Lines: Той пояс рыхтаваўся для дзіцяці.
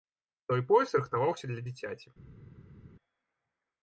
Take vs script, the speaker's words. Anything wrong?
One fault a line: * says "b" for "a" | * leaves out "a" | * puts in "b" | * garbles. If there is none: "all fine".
all fine